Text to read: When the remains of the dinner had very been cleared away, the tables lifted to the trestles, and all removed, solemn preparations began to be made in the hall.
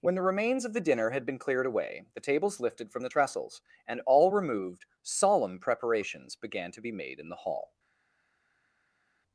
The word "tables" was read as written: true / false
true